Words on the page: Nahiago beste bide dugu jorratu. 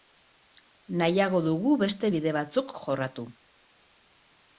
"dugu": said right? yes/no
no